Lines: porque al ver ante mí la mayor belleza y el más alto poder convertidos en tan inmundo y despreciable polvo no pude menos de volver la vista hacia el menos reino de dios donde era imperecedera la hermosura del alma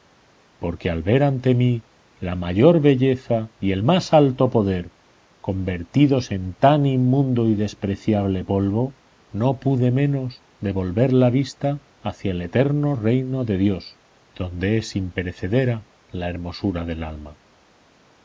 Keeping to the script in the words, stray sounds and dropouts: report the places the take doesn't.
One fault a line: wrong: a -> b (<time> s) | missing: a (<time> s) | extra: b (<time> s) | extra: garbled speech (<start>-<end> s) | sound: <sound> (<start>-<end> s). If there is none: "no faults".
wrong: menos -> eterno (12.4 s)
wrong: era -> es (14.8 s)